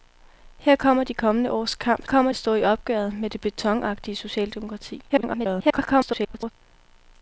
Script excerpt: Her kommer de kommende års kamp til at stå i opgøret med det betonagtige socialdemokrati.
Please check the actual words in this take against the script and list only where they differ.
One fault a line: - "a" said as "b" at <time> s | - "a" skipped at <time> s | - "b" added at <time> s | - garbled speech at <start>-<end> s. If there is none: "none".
- "til" said as "kommer" at 2.0 s
- garbled speech at 5.1-6.5 s